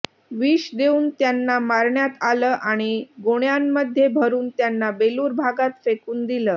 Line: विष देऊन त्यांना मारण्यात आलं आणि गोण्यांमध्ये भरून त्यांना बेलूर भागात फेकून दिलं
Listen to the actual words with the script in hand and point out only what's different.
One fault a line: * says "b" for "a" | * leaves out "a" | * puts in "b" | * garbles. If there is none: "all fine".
all fine